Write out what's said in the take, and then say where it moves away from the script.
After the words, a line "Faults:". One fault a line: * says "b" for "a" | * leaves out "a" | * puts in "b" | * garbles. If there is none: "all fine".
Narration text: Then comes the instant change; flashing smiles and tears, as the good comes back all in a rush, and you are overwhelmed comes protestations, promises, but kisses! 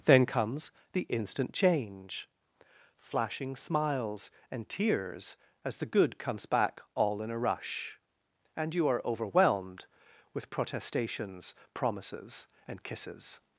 Then comes the instant change; flashing smiles and tears, as the good comes back all in a rush, and you are overwhelmed with protestations, promises, and kisses!
Faults:
* says "with" for "comes"
* says "and" for "but"